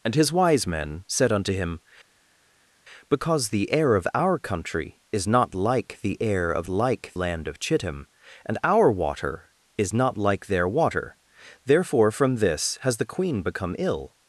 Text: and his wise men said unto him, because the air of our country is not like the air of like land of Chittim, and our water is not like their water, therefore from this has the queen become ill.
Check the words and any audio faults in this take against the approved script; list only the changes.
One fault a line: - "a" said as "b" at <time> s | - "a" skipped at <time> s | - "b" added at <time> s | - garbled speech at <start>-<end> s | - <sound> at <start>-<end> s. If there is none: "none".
none